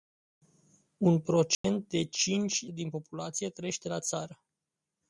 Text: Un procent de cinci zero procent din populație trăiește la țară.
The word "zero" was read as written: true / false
false